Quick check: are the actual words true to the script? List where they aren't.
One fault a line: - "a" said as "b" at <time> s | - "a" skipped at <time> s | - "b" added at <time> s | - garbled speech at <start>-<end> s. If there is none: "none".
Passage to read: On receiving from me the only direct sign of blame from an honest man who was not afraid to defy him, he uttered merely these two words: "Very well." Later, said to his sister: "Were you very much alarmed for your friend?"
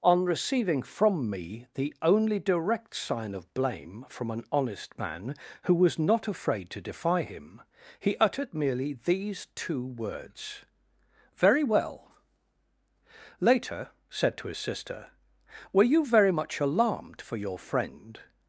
none